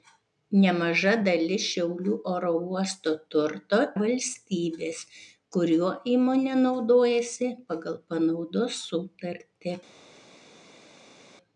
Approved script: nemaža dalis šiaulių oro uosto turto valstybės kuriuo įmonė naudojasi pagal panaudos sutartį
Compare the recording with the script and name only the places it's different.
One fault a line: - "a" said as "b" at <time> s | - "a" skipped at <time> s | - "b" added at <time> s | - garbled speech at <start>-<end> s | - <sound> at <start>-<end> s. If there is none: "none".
none